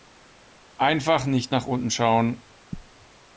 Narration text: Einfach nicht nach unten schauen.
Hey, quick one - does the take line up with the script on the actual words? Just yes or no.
yes